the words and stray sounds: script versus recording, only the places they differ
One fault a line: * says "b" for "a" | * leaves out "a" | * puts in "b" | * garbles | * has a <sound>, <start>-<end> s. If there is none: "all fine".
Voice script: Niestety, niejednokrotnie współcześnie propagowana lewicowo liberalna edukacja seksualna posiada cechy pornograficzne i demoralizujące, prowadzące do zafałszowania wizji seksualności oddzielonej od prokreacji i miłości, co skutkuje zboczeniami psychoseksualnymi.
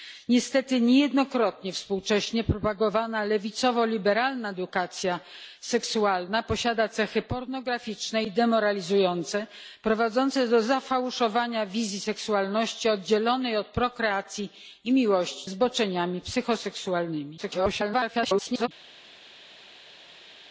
* leaves out "co skutkuje"
* garbles